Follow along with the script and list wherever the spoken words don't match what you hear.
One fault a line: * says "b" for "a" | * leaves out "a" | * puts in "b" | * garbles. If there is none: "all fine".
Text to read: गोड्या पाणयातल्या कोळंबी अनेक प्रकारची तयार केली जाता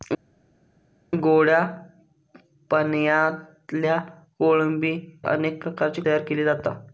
all fine